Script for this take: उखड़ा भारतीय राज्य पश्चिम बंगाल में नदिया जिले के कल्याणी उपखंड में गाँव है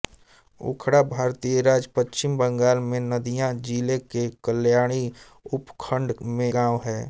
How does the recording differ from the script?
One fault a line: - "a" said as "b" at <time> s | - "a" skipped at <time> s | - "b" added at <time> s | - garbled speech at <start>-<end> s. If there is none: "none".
none